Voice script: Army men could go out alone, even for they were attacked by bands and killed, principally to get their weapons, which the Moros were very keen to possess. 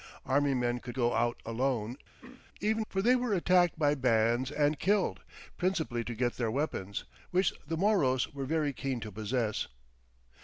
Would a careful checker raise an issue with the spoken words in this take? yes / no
no